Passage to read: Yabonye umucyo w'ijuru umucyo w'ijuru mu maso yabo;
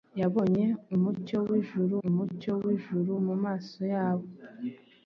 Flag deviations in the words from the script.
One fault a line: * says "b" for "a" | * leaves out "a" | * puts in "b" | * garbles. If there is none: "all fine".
all fine